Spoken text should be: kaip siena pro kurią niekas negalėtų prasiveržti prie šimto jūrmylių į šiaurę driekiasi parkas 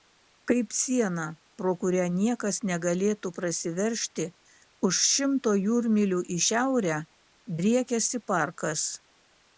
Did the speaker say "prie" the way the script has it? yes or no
no